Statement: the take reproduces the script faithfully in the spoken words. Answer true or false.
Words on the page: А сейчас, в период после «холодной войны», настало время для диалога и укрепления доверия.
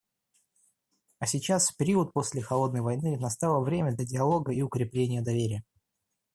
true